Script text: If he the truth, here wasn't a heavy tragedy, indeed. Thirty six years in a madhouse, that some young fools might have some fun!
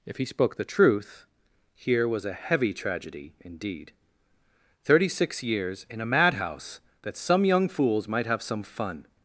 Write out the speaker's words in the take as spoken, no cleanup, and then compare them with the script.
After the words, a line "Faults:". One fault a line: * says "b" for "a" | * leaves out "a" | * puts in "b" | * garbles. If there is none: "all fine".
If he spoke the truth, here was a heavy tragedy, indeed. Thirty six years in a madhouse, that some young fools might have some fun!
Faults:
* puts in "spoke"
* says "was" for "wasn't"